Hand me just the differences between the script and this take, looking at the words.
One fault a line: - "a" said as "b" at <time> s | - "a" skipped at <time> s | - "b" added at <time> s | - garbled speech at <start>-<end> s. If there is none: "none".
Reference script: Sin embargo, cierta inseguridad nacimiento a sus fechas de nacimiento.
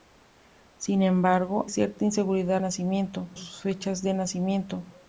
none